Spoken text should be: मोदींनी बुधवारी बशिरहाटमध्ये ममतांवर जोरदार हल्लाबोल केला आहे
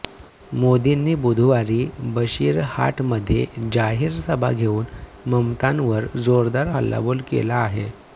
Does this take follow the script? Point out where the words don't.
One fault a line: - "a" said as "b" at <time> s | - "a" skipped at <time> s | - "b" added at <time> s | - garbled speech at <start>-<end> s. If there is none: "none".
- "जाहीर सभा घेऊन" added at 3.7 s